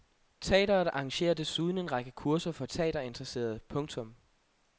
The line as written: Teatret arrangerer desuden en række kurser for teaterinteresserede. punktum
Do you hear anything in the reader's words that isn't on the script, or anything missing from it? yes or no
no